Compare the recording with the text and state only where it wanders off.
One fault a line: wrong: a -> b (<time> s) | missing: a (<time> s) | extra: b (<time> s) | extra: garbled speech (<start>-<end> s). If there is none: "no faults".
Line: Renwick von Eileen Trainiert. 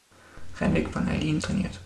no faults